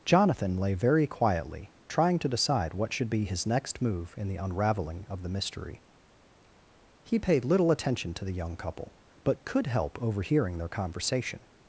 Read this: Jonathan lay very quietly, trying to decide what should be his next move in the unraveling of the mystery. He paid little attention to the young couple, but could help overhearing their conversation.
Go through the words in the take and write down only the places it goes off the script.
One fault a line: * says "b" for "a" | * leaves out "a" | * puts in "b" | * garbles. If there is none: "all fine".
all fine